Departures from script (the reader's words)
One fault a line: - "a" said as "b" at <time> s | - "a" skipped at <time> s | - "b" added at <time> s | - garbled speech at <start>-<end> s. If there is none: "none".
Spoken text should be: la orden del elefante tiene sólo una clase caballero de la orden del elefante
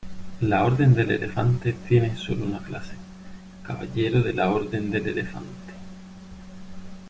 none